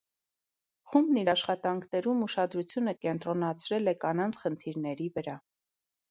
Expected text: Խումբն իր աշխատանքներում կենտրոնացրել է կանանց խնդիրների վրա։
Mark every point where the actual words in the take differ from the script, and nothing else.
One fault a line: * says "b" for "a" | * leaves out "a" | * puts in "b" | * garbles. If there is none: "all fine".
* puts in "ուշադրությունը"